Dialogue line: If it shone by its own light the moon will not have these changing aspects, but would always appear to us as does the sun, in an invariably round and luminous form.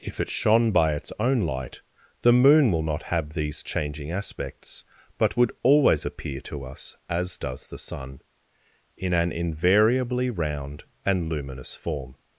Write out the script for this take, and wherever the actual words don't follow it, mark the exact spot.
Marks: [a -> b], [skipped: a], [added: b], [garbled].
If it shone by its own light the moon will not have these changing aspects, but would always appear to us as does the sun, in an invariably round and luminous form.